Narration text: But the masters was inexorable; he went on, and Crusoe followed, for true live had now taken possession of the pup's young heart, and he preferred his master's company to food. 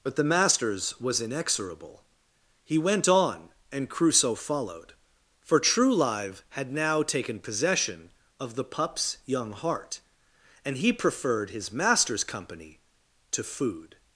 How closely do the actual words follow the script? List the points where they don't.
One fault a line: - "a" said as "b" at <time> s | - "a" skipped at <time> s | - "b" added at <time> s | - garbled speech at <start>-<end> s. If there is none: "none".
none